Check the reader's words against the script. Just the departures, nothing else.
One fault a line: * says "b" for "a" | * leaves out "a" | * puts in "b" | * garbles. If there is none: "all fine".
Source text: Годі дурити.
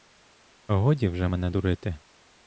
* puts in "вже мене"